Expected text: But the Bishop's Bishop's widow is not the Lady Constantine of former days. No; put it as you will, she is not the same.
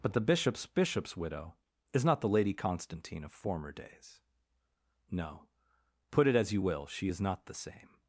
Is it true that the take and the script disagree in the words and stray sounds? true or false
false